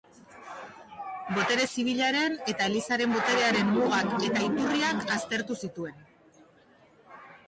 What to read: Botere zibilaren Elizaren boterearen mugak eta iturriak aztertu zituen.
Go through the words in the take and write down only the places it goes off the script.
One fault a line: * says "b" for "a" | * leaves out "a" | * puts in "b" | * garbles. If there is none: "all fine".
* puts in "eta"